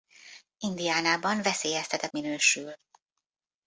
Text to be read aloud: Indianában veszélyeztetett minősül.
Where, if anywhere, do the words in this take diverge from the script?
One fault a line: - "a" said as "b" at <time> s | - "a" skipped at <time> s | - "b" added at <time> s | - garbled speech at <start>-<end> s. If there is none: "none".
none